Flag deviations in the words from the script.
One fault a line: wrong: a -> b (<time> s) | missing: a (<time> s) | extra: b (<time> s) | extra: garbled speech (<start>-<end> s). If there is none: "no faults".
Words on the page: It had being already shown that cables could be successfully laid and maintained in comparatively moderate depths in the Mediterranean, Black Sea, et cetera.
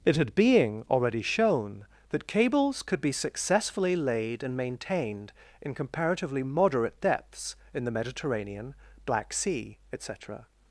no faults